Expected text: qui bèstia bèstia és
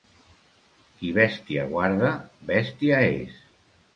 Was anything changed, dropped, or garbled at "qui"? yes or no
no